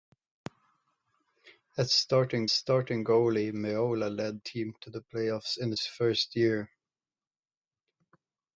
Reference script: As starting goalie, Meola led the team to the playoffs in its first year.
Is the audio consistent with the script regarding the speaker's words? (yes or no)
no